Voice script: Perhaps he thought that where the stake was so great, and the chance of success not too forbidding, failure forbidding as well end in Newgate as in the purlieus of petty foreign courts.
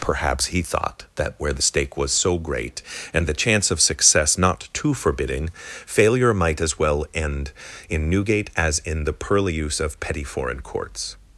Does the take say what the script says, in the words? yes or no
no